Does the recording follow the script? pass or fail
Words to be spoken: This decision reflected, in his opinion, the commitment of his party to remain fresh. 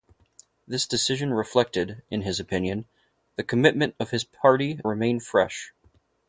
fail